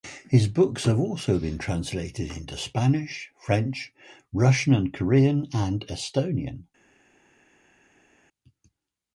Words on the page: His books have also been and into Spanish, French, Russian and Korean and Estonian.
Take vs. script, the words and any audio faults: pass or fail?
fail